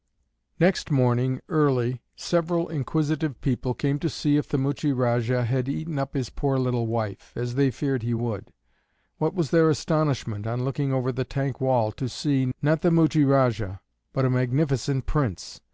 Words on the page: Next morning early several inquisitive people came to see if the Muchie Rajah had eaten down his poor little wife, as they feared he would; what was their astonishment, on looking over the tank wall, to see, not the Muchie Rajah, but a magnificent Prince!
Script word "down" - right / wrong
wrong